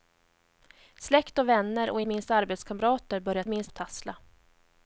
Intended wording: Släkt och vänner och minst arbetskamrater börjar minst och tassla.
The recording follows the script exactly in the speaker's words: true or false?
true